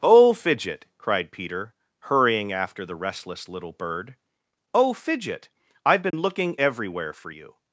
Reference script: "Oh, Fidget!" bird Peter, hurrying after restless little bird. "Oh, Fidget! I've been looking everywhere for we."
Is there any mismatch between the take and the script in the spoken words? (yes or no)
yes